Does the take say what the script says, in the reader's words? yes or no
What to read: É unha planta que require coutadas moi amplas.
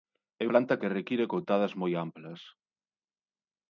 no